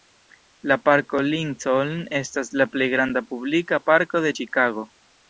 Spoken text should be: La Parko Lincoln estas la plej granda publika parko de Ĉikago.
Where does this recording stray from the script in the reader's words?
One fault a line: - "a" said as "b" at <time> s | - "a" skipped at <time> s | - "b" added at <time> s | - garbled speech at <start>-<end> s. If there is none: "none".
none